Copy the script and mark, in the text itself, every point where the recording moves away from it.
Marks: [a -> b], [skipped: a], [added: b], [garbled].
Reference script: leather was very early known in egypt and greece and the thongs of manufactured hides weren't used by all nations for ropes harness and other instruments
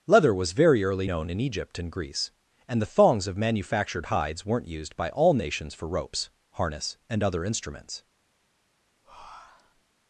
leather was very early known in egypt and greece and the thongs of manufactured hides weren't used by all nations for ropes harness and other instruments